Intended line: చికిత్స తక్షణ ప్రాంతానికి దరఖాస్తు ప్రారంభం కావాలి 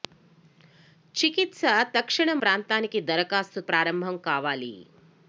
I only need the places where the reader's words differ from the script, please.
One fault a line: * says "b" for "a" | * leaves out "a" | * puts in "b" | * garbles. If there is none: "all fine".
all fine